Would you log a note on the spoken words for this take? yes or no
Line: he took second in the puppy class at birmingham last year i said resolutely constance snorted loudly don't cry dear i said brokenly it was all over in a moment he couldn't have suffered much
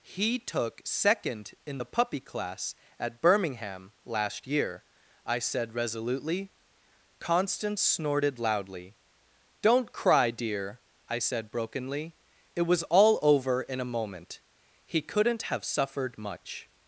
no